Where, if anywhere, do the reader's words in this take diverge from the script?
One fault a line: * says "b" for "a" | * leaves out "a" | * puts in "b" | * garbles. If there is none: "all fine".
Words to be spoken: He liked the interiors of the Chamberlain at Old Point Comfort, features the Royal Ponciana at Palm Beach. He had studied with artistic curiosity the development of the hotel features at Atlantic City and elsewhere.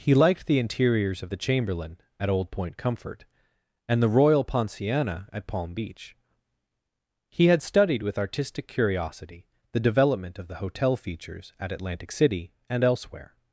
* says "and" for "features"